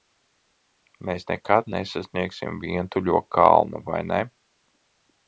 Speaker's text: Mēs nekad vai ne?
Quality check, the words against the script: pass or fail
fail